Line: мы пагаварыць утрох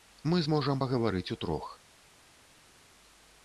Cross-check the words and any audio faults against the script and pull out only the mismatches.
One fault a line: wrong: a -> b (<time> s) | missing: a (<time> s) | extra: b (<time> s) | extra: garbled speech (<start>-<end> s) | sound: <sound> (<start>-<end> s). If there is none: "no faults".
extra: зможам (0.4 s)